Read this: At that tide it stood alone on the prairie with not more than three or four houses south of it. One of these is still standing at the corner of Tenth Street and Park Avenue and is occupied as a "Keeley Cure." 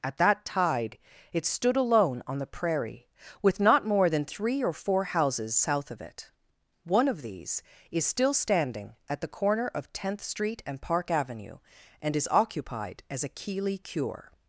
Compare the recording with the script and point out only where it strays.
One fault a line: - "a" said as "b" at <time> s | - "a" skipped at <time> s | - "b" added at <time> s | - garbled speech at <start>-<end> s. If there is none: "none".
none